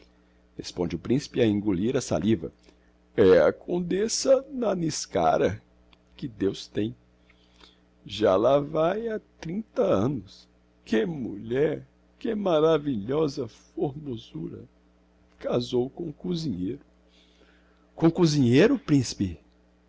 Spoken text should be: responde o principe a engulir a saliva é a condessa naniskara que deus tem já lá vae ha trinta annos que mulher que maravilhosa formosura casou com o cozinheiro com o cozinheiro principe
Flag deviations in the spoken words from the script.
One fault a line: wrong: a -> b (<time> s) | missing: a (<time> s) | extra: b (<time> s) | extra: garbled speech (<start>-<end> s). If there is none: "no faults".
no faults